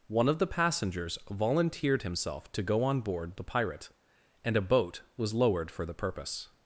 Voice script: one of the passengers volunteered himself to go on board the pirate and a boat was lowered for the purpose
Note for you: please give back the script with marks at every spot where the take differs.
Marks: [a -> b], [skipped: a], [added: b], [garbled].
one of the passengers volunteered himself to go on board the pirate and a boat was lowered for the purpose